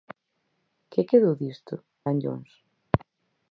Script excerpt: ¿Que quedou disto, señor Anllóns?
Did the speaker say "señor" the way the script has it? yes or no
no